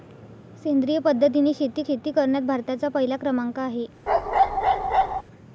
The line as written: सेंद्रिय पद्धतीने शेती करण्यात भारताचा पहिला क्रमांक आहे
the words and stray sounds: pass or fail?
fail